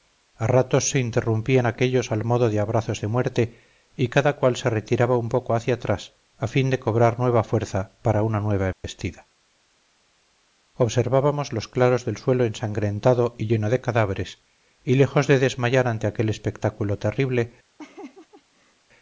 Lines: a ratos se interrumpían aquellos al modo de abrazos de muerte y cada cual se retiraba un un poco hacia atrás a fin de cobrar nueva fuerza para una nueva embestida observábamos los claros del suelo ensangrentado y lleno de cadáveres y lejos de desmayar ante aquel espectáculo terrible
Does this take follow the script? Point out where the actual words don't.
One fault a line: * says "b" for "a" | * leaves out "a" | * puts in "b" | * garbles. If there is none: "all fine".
* leaves out "un"